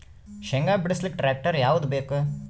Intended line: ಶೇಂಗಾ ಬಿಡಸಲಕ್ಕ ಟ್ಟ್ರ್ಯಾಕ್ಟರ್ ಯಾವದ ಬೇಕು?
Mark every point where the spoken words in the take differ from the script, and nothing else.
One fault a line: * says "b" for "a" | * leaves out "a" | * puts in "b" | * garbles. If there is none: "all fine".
all fine